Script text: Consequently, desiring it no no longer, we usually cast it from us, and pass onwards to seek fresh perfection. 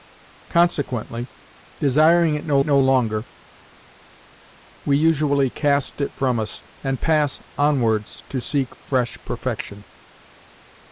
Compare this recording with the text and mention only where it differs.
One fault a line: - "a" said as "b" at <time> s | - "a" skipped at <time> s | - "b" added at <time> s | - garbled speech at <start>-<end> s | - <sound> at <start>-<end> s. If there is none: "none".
none